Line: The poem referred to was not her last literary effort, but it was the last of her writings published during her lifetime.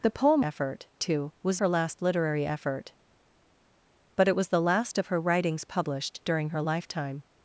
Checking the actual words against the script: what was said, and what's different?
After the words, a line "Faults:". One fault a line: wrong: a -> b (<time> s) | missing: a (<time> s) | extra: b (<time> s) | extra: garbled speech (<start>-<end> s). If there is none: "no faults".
The poem effort to was her last literary effort, but it was the last of her writings published during her lifetime.
Faults:
wrong: referred -> effort (0.4 s)
missing: not (1.6 s)